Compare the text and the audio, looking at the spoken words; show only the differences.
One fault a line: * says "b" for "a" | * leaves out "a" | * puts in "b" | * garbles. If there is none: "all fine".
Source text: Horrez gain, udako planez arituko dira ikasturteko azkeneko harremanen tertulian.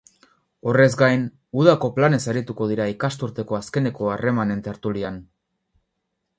all fine